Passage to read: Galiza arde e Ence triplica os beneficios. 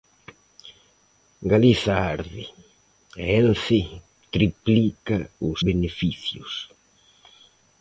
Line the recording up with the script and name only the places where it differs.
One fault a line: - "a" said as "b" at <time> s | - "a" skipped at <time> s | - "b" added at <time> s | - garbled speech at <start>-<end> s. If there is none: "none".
none